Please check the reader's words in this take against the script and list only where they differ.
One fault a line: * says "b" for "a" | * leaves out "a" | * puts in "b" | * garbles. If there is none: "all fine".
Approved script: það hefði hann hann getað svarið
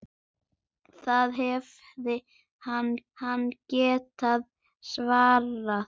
all fine